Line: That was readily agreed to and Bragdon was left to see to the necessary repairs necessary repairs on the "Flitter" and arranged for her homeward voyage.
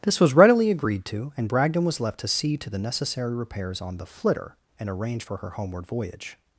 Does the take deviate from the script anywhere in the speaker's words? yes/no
yes